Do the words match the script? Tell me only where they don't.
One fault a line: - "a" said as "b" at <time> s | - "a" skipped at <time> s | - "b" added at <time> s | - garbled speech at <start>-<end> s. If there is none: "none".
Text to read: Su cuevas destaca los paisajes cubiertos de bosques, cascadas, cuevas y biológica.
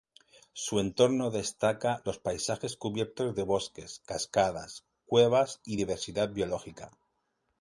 - "cuevas" said as "entorno" at 0.8 s
- "diversidad" added at 5.7 s